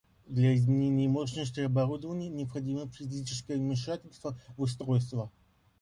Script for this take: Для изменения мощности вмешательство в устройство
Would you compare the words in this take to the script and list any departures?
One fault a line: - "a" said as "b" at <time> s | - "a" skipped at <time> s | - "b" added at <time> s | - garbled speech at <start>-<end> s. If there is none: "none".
- "оборудования необходимо физическое" added at 1.6 s